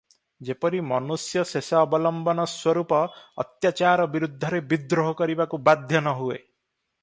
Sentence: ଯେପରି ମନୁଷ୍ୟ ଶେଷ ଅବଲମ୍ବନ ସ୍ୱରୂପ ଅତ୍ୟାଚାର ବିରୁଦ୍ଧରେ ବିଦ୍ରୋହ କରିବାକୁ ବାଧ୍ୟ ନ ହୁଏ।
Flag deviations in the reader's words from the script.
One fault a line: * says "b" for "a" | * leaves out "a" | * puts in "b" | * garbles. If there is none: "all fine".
all fine